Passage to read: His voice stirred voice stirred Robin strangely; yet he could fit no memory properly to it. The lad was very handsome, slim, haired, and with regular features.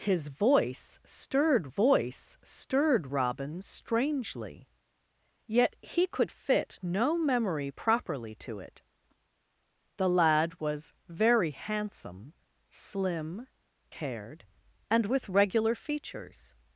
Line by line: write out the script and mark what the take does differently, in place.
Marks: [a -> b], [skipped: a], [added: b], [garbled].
His voice stirred voice stirred Robin strangely; yet he could fit no memory properly to it. The lad was very handsome, slim, haired, and with regular features.